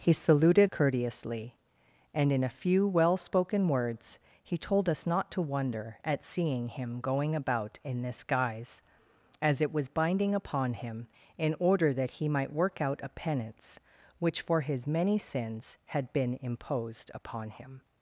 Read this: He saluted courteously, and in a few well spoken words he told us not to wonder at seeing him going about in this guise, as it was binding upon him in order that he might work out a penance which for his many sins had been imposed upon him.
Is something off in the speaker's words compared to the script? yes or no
no